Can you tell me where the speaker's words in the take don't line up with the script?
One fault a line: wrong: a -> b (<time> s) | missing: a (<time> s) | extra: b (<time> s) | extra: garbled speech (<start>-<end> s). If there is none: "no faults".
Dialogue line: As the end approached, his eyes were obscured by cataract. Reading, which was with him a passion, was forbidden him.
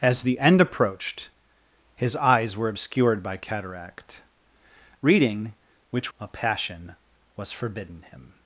missing: was with him (6.1 s)